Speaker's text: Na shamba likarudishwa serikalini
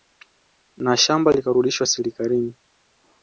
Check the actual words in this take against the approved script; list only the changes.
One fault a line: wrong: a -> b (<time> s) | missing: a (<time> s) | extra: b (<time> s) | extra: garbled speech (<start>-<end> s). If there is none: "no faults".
no faults